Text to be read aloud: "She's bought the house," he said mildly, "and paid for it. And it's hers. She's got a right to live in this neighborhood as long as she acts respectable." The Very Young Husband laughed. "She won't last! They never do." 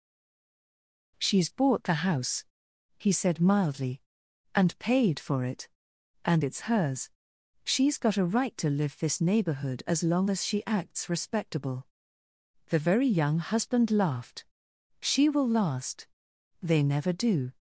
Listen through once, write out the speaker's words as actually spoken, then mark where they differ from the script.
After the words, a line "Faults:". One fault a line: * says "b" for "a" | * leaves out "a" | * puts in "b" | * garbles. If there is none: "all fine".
"She's bought the house," he said mildly, "and paid for it. And it's hers. She's got a right to live this neighborhood as long as she acts respectable." The Very Young Husband laughed. "She will last! They never do."
Faults:
* leaves out "in"
* says "will" for "won't"